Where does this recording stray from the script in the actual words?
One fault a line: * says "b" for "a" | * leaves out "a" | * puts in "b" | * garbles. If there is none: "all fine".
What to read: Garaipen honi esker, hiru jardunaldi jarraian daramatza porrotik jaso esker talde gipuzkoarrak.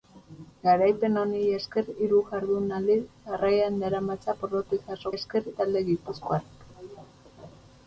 all fine